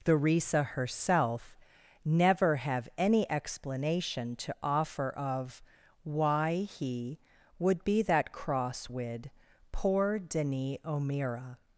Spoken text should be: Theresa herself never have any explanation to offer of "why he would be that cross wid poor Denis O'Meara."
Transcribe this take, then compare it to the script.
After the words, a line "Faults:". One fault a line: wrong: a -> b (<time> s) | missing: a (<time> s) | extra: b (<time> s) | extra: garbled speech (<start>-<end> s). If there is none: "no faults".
Theresa herself never have any explanation to offer of "why he would be that cross wid poor Denis O'Meara."
Faults:
no faults